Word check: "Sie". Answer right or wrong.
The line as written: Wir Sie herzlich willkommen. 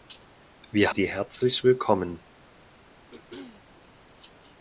right